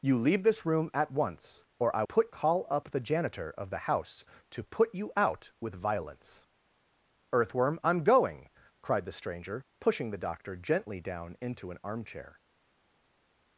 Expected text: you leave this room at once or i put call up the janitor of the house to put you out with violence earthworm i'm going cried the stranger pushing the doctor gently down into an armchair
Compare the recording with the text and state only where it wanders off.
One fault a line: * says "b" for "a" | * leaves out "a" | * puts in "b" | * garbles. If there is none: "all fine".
all fine